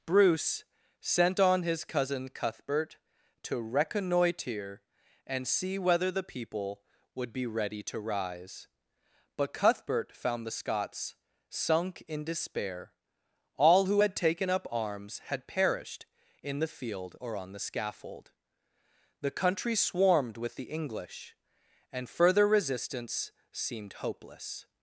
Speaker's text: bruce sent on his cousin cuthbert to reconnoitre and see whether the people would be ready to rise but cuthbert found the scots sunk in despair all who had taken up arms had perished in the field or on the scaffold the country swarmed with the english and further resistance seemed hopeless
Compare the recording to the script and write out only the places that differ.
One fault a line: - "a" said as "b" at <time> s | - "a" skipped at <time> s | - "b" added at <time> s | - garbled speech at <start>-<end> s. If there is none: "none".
none